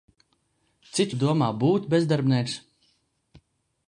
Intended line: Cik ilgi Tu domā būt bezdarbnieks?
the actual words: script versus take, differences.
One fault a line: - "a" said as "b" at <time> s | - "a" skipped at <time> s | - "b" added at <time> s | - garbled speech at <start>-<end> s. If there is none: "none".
- "ilgi" skipped at 1.1 s